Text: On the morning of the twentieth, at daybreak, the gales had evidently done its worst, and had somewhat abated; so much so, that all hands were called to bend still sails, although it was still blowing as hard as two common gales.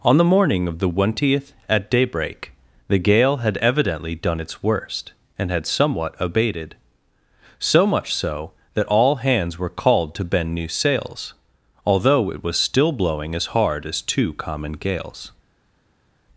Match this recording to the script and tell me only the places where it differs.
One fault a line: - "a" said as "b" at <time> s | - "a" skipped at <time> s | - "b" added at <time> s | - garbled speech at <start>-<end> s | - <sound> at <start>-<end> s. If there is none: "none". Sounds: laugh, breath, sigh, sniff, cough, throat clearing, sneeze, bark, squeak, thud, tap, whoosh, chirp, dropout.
- "gales" said as "gale" at 3.0 s
- "still" said as "new" at 10.6 s